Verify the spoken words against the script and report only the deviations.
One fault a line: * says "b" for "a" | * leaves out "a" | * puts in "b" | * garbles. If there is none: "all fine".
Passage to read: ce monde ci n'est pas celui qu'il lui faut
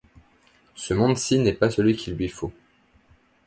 all fine